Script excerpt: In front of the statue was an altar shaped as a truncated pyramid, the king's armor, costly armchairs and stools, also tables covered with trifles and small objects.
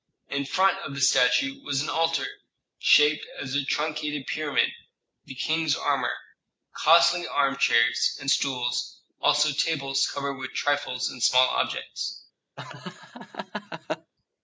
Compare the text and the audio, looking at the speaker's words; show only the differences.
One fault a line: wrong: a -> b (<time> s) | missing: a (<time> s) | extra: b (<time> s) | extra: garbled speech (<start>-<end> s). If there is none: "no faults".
no faults